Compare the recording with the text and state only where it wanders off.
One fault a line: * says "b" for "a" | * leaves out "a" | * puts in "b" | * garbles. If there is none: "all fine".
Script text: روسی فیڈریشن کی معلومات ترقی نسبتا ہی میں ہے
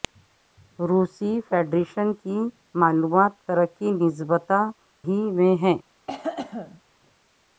all fine